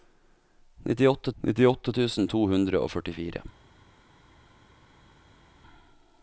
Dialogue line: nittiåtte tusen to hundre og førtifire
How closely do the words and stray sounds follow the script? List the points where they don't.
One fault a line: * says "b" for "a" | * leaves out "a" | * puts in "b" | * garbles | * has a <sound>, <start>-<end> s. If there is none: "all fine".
* puts in "nittiåtte"